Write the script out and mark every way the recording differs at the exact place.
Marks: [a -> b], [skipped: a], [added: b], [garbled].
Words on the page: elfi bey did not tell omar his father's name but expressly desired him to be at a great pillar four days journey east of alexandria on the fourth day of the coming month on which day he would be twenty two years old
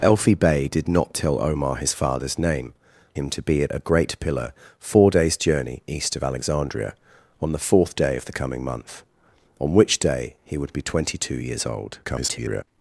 elfi bey did not tell omar his father's name [skipped: but expressly desired] him to be at a great pillar four days journey east of alexandria on the fourth day of the coming month on which day he would be twenty two years old [garbled]